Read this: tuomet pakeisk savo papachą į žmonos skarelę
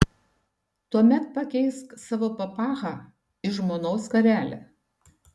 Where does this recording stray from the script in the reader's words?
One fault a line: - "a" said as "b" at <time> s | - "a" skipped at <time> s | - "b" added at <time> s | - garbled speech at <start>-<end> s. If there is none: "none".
none